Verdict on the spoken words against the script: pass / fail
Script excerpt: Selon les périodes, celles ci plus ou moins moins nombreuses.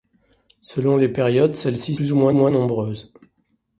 pass